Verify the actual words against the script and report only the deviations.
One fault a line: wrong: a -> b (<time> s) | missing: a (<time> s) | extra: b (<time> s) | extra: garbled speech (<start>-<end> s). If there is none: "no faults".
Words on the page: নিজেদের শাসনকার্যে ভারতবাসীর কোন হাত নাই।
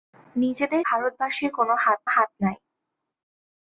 missing: শাসনকার্যে (0.8 s)
extra: হাত (2.1 s)